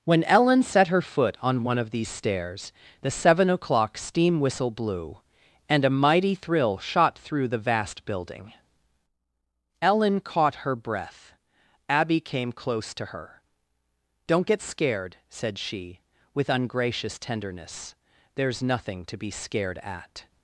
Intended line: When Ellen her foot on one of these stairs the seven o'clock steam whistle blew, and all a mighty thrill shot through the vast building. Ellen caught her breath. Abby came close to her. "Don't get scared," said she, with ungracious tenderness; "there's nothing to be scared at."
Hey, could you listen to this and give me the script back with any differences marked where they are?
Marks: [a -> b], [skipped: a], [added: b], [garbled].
When Ellen [added: set] her foot on one of these stairs the seven o'clock steam whistle blew, and [skipped: all] a mighty thrill shot through the vast building. Ellen caught her breath. Abby came close to her. "Don't get scared," said she, with ungracious tenderness; "there's nothing to be scared at."